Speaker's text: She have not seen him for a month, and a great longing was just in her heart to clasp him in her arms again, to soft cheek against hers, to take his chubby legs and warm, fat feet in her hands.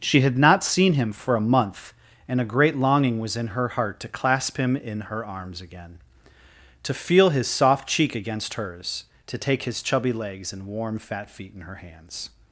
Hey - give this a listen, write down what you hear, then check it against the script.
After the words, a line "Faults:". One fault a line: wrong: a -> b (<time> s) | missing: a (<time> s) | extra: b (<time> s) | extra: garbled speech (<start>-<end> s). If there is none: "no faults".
She had not seen him for a month, and a great longing was in her heart to clasp him in her arms again, to feel his soft cheek against hers, to take his chubby legs and warm, fat feet in her hands.
Faults:
wrong: have -> had (0.2 s)
missing: just (3.4 s)
extra: feel his (6.9 s)